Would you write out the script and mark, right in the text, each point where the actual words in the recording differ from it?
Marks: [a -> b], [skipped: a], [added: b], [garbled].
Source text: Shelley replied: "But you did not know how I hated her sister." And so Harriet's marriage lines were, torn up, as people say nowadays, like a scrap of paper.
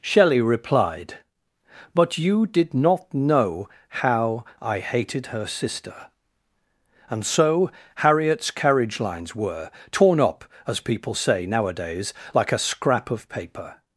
Shelley replied: "But you did not know how I hated her sister." And so Harriet's [marriage -> carriage] lines were, torn up, as people say nowadays, like a scrap of paper.